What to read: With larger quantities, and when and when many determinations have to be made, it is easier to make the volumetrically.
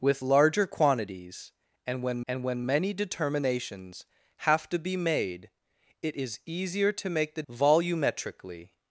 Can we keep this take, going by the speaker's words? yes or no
yes